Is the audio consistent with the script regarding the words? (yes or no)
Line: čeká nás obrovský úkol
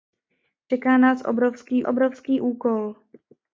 no